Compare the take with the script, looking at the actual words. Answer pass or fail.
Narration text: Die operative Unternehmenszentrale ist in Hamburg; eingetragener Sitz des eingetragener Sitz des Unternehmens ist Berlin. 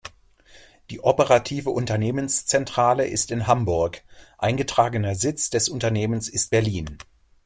fail